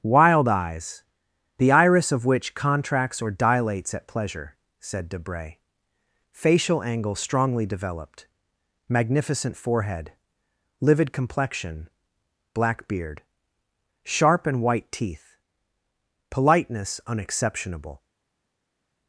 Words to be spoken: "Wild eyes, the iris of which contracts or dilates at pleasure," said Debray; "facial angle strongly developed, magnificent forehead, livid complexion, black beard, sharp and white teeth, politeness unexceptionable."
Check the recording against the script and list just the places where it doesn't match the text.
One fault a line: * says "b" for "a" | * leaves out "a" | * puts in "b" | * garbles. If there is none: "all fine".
all fine